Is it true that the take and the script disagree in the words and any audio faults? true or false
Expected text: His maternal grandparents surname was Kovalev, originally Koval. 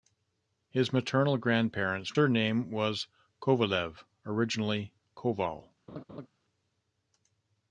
true